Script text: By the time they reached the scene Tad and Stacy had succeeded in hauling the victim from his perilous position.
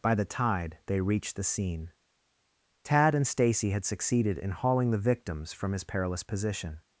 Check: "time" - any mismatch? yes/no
yes